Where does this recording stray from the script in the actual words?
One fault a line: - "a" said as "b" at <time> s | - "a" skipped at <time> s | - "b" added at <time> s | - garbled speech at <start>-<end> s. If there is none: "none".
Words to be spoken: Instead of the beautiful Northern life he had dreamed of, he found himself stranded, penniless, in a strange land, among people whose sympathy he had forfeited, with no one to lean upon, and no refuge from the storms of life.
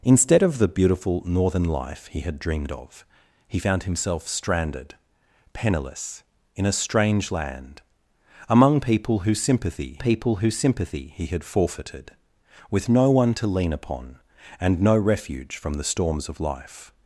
- "people whose sympathy" added at 10.0 s